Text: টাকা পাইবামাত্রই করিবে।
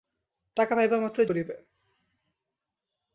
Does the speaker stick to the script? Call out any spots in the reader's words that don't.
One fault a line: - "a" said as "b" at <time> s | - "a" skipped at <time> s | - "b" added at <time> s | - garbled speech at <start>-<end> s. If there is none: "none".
none